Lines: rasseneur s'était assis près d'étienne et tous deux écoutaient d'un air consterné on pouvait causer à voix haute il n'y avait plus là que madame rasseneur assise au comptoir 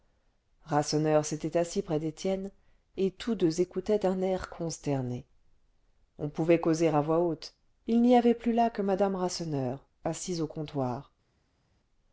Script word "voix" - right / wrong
right